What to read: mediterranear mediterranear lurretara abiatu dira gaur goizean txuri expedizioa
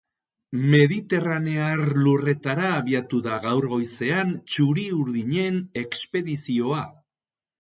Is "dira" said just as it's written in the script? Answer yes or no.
no